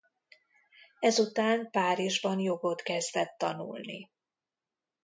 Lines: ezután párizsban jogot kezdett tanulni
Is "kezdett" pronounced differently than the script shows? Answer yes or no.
no